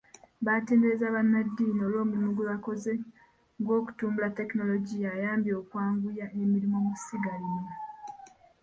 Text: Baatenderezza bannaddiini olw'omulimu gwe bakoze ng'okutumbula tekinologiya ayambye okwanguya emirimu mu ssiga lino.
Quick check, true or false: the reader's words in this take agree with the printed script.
true